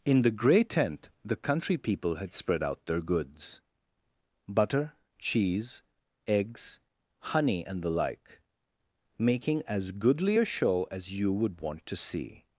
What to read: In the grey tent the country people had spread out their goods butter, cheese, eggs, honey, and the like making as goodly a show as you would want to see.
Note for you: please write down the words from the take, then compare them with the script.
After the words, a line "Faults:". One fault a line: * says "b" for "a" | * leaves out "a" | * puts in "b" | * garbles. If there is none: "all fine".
In the grey tent the country people had spread out their goods butter, cheese, eggs, honey, and the like making as goodly a show as you would want to see.
Faults:
all fine